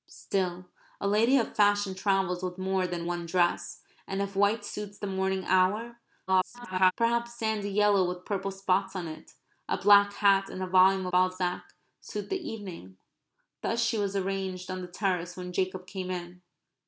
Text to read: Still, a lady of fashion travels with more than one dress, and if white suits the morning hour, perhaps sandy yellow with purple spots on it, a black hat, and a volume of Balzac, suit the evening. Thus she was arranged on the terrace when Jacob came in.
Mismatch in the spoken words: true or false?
true